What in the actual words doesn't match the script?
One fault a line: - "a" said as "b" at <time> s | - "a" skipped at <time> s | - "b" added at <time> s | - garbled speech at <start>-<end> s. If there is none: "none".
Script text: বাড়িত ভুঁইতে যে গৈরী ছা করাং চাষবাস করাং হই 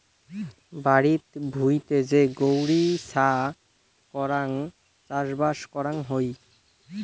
none